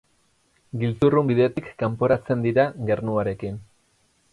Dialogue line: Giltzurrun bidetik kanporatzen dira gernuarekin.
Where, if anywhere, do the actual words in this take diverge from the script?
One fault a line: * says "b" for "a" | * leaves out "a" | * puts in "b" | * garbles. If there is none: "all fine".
all fine